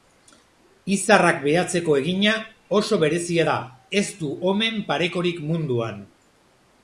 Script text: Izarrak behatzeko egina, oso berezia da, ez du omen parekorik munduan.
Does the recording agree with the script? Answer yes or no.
yes